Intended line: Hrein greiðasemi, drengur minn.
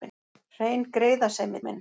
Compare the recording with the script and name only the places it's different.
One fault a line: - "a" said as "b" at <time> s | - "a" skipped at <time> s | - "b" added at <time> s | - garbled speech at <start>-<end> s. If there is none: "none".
- "drengur" skipped at 1.6 s